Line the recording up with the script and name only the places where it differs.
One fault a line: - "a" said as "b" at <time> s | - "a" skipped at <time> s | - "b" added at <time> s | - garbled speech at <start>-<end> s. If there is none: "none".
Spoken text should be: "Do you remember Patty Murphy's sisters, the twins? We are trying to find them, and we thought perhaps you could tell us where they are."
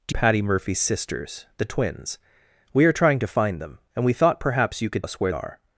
- "you remember" skipped at 0.1 s
- "tell" skipped at 5.1 s
- "they" skipped at 5.3 s